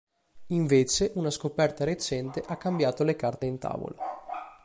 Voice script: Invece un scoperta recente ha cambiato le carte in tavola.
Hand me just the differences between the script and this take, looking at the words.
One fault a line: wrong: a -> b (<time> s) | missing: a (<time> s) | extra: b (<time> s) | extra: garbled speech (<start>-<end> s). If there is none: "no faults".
wrong: un -> una (1.1 s)